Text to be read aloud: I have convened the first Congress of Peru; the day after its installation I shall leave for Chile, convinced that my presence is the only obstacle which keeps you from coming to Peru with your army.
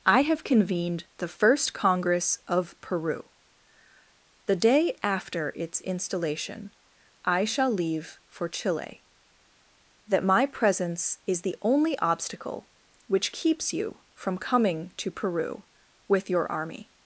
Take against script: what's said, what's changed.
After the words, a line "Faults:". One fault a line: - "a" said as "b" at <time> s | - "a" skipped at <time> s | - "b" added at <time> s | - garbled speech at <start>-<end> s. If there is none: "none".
I have convened the first Congress of Peru; the day after its installation I shall leave for Chile, that my presence is the only obstacle which keeps you from coming to Peru with your army.
Faults:
- "convinced" skipped at 9.1 s